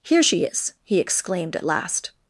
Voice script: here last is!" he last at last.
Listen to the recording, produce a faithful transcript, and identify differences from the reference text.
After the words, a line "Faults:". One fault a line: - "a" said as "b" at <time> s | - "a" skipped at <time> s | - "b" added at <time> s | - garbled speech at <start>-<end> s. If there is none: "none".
here she is!" he exclaimed at last.
Faults:
- "last" said as "she" at 0.2 s
- "last" said as "exclaimed" at 1.0 s